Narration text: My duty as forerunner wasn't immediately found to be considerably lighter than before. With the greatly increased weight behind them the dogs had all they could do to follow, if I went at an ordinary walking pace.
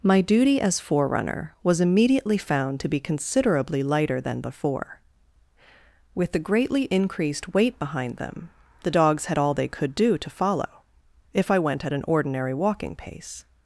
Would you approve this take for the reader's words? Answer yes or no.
no